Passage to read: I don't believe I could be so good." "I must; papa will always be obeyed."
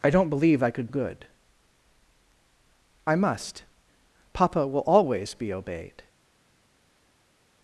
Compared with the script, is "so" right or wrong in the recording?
wrong